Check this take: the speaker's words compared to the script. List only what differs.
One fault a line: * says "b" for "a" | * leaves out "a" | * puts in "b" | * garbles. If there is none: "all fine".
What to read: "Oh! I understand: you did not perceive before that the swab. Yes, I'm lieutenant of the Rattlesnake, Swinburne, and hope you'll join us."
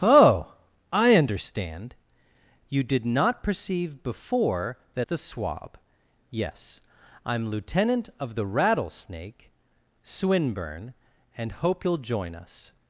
all fine